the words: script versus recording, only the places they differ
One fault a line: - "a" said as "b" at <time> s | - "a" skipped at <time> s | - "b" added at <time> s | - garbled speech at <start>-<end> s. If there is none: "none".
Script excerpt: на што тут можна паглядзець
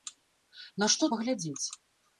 - "тут можна" skipped at 1.1 s